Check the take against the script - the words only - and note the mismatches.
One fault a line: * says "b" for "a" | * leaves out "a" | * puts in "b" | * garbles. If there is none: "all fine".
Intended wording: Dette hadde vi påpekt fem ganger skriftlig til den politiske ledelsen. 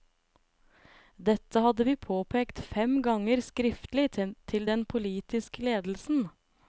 all fine